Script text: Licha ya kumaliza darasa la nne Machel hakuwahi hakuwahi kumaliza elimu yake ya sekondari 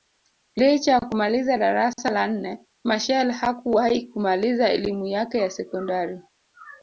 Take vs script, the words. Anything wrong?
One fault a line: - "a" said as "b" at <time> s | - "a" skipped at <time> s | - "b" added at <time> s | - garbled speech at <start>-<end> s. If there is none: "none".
- "hakuwahi" skipped at 4.1 s